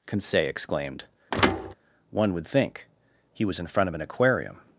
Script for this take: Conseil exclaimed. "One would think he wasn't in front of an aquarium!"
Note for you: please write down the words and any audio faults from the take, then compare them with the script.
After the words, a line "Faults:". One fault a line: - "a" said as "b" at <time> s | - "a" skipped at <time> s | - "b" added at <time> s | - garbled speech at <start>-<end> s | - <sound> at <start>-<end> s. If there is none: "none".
Conseil exclaimed. "One would think he was in front of an aquarium!"
Faults:
- thud at 1.3-1.7 s
- "wasn't" said as "was" at 3.4 s